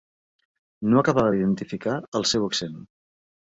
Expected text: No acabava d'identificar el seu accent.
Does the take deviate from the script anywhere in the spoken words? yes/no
no